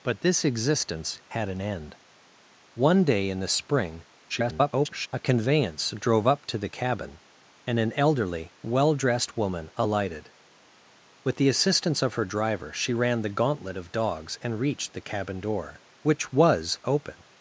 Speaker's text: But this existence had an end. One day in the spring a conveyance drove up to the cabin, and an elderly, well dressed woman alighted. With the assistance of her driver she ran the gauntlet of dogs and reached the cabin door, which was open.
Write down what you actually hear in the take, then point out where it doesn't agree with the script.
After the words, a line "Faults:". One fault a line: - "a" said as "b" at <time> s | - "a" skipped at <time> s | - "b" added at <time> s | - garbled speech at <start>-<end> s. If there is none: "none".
But this existence had an end. One day in the spring [garbled] a conveyance drove up to the cabin, and an elderly, well dressed woman alighted. With the assistance of her driver she ran the gauntlet of dogs and reached the cabin door, which was open.
Faults:
- garbled speech at 4.3-5.1 s